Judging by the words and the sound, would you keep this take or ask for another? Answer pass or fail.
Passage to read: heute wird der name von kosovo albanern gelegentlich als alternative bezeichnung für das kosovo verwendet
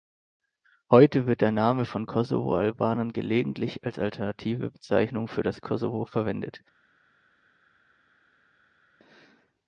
pass